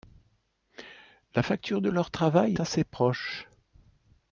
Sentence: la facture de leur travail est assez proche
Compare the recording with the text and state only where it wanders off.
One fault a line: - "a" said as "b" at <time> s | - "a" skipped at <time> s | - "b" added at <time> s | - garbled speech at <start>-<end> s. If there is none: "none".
- "est" skipped at 2.6 s